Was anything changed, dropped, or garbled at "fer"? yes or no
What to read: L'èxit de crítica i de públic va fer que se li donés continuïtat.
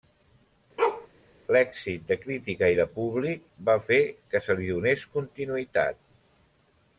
no